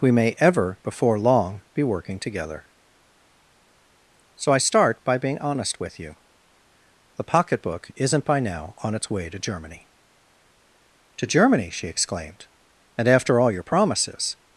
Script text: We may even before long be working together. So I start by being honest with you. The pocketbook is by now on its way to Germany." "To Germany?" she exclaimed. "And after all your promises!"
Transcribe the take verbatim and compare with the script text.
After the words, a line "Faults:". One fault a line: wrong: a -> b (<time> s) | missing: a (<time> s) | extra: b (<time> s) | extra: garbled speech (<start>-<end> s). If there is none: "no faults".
We may ever before long be working together. So I start by being honest with you. The pocketbook isn't by now on its way to Germany." "To Germany?" she exclaimed. "And after all your promises!"
Faults:
wrong: even -> ever (0.4 s)
wrong: is -> isn't (8.0 s)